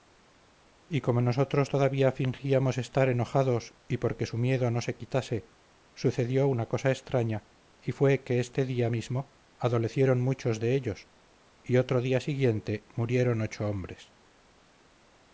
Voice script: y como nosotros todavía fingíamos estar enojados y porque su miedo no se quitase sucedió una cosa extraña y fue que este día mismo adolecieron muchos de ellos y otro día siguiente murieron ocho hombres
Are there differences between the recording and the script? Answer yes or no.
no